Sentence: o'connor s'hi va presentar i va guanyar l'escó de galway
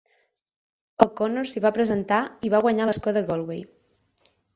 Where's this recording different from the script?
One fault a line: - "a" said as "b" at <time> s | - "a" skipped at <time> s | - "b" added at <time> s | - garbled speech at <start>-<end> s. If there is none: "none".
none